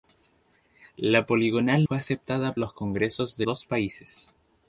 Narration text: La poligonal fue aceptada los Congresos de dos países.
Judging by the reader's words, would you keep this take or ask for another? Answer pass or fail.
pass